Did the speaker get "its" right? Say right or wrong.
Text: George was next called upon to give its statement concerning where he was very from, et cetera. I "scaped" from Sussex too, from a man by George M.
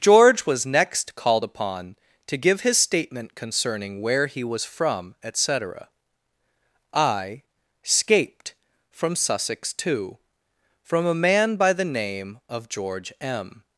wrong